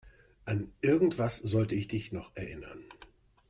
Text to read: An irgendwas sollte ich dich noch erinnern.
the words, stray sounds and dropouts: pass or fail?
pass